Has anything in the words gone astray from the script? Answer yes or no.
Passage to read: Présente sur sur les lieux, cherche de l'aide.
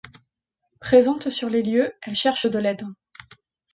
yes